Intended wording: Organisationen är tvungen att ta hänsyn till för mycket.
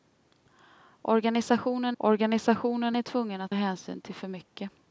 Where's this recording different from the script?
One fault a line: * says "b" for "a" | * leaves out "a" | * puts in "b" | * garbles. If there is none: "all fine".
* puts in "organisationen"
* leaves out "ta"